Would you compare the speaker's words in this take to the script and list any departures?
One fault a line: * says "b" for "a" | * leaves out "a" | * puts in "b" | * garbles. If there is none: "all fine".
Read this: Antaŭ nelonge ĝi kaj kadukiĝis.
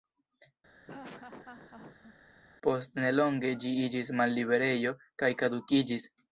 * says "Post" for "Antaŭ"
* puts in "iĝis malliberejo"